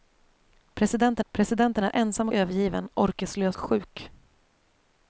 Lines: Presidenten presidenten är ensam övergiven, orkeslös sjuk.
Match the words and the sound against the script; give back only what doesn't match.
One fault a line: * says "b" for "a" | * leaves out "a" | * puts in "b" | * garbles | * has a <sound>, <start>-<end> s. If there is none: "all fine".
all fine